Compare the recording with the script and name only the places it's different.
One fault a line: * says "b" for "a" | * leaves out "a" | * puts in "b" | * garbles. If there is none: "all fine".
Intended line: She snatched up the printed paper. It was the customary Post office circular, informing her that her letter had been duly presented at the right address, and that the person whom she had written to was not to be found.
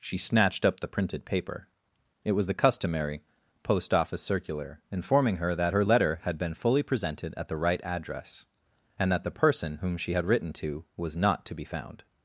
* says "fully" for "duly"